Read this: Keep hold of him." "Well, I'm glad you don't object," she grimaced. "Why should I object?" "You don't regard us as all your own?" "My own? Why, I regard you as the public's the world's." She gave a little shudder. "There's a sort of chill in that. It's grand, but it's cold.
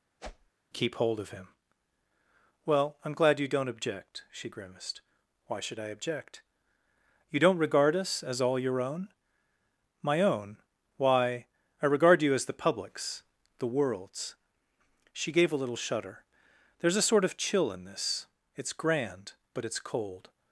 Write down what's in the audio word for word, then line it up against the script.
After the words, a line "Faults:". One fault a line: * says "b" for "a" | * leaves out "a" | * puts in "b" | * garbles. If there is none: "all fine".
Keep hold of him." "Well, I'm glad you don't object," she grimaced. "Why should I object?" "You don't regard us as all your own?" "My own? Why, I regard you as the public's the world's." She gave a little shudder. "There's a sort of chill in this. It's grand, but it's cold.
Faults:
* says "this" for "that"